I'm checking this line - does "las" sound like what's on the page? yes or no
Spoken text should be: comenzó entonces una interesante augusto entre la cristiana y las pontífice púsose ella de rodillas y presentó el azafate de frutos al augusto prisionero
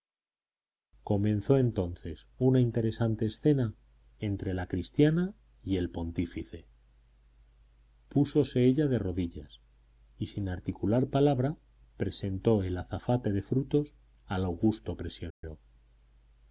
no